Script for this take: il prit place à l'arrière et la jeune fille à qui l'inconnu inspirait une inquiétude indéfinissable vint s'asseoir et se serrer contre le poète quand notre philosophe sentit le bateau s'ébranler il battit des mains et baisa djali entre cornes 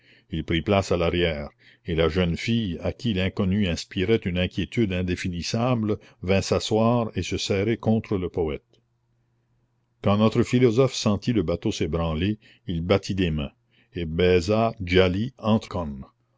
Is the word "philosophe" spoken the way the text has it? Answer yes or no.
yes